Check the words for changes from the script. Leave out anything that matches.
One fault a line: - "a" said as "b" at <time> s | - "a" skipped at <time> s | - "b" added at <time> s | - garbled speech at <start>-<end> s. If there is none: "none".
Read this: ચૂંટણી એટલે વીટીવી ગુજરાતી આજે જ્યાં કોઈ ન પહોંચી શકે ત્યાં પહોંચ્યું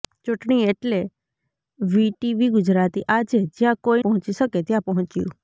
- "ન" skipped at 4.0 s